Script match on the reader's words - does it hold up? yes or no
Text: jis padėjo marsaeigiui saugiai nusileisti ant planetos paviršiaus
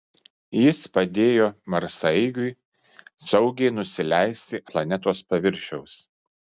no